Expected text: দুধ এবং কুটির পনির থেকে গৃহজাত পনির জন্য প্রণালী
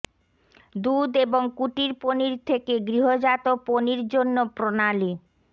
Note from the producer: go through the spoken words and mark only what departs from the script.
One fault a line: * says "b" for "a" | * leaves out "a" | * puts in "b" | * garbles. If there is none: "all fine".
all fine